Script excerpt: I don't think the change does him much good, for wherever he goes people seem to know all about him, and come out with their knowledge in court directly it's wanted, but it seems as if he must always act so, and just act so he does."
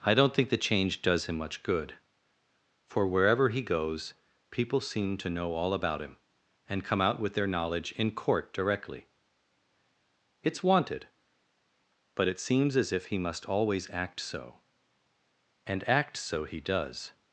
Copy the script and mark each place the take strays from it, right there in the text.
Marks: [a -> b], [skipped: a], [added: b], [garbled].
I don't think the change does him much good, for wherever he goes people seem to know all about him, and come out with their knowledge in court directly it's wanted, but it seems as if he must always act so, and [skipped: just] act so he does."